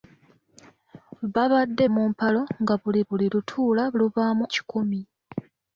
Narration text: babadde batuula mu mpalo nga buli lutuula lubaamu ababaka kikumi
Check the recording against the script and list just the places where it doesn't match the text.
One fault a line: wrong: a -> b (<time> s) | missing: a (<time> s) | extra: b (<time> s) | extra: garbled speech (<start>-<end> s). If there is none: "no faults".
missing: batuula (1.8 s)
extra: buli (3.1 s)
missing: ababaka (4.4 s)